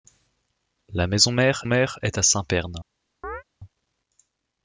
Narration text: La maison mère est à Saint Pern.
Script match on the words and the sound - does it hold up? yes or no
no